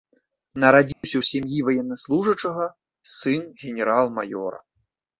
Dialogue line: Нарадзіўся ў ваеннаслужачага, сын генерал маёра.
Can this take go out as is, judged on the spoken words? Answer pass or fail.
fail